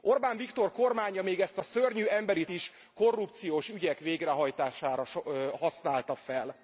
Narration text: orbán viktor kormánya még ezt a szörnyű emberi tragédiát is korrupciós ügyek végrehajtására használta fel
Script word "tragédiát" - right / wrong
wrong